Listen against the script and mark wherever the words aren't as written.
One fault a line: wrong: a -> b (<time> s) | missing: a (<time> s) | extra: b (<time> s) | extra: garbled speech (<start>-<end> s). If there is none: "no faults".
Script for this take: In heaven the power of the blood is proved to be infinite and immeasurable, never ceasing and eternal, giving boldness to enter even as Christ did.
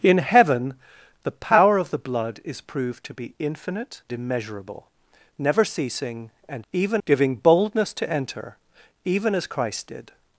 missing: and (4.0 s)
wrong: eternal -> even (6.7 s)